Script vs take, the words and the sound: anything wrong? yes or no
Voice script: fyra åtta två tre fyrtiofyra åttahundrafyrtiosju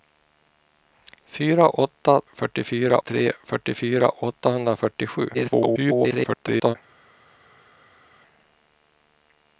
yes